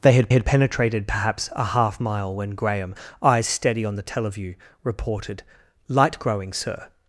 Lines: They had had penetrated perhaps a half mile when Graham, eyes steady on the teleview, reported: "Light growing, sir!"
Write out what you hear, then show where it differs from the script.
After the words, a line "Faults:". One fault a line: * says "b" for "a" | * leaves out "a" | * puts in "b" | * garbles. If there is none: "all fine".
They had had penetrated perhaps a half mile when Graham, eyes steady on the teleview, reported: "Light growing, sir!"
Faults:
all fine